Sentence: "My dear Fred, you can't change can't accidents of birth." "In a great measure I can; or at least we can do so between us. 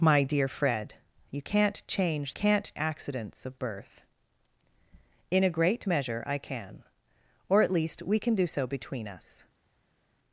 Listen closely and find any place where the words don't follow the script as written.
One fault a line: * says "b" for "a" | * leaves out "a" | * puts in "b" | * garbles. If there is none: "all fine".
all fine